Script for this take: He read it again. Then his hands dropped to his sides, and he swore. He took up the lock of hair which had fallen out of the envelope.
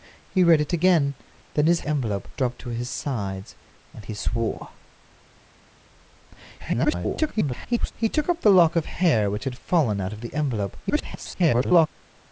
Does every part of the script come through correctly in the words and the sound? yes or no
no